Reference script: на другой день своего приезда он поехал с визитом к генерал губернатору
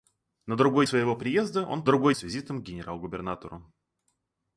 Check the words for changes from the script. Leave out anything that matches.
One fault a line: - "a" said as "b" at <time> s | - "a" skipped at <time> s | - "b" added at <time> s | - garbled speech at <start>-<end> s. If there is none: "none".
- "день" skipped at 0.9 s
- "поехал" said as "другой" at 1.9 s